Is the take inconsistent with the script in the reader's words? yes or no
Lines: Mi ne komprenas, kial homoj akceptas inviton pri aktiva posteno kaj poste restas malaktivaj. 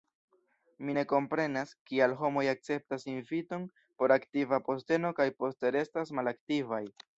yes